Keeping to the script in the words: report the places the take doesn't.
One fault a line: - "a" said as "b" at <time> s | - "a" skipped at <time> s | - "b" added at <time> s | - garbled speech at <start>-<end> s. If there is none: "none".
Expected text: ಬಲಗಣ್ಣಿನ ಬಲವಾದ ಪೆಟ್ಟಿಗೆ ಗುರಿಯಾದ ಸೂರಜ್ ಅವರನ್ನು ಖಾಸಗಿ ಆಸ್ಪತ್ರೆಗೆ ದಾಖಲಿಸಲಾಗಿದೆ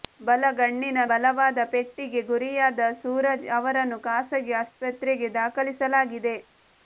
none